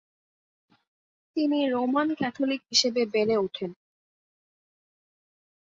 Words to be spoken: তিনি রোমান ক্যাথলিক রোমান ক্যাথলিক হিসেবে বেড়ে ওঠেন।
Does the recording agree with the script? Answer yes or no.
no